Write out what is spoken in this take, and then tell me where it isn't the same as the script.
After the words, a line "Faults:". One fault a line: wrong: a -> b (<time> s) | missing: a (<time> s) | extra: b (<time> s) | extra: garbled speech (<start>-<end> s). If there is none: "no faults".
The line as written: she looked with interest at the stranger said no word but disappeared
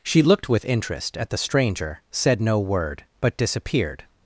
she looked with interest at the stranger said no word but disappeared
Faults:
no faults